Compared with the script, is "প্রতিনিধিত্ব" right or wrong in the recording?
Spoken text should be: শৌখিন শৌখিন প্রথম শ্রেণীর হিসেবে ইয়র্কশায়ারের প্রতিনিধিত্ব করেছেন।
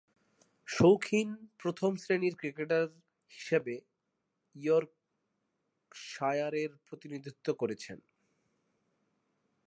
right